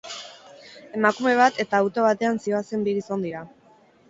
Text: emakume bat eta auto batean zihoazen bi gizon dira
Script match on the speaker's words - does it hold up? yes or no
yes